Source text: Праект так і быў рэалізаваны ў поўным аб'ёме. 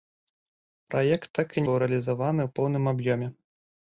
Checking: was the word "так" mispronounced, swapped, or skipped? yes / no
no